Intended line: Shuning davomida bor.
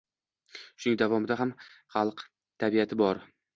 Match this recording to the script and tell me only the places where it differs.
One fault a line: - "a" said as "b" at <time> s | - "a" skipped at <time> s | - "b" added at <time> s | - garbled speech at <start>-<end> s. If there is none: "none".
- "ham xalq tabiati" added at 1.4 s